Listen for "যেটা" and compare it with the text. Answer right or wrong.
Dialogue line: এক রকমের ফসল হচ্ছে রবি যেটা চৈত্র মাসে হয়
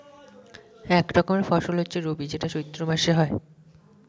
right